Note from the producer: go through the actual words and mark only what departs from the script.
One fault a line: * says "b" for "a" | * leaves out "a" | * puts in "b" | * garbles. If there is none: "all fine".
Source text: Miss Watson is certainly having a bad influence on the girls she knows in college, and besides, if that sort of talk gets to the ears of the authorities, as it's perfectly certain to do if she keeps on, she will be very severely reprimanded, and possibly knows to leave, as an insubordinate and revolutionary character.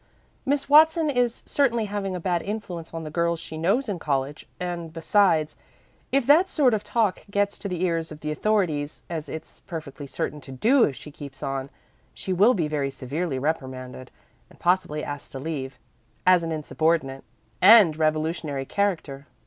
* says "asked" for "knows"